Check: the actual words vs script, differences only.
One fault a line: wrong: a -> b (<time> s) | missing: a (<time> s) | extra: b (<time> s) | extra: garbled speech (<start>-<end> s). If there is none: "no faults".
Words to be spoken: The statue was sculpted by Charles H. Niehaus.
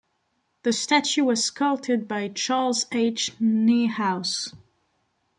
no faults